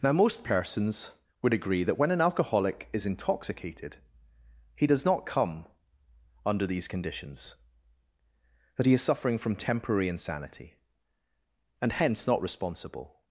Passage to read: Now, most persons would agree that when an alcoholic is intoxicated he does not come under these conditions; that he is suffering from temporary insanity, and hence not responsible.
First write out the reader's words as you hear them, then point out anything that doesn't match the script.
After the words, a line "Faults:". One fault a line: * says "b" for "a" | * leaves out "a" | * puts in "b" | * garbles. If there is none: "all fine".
Now, most persons would agree that when an alcoholic is intoxicated he does not come under these conditions; that he is suffering from temporary insanity, and hence not responsible.
Faults:
all fine